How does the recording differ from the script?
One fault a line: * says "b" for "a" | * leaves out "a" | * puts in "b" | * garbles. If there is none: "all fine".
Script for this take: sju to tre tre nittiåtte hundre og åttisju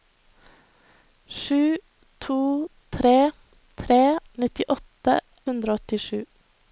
all fine